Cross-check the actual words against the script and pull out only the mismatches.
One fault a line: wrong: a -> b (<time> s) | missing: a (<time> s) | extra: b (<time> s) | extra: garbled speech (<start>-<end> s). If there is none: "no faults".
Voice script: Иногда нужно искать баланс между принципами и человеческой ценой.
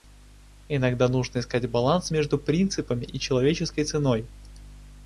no faults